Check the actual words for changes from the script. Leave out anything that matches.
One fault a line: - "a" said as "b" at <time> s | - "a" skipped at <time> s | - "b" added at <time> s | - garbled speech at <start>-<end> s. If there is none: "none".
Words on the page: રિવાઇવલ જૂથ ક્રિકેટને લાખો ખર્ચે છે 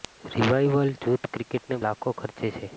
none